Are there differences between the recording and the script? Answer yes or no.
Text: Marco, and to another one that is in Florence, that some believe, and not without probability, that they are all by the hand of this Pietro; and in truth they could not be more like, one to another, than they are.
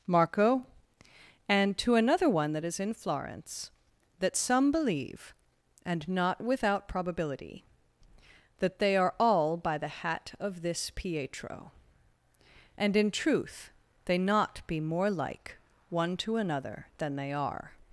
yes